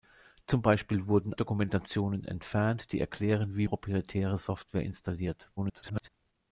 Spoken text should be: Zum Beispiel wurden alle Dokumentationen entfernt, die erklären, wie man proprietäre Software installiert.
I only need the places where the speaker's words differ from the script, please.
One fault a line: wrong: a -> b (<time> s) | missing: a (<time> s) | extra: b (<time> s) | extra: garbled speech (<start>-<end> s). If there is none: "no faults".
missing: alle (1.4 s)
missing: man (3.7 s)
extra: garbled speech (5.6-6.1 s)